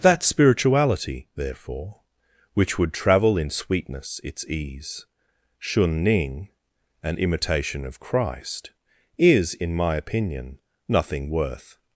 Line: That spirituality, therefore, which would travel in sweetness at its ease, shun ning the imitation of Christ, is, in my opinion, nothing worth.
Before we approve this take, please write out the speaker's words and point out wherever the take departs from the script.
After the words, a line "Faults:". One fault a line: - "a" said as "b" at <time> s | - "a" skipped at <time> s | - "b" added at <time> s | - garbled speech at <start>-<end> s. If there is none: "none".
That spirituality, therefore, which would travel in sweetness its ease, shun ning an imitation of Christ, is, in my opinion, nothing worth.
Faults:
- "at" skipped at 4.2 s
- "the" said as "an" at 7.0 s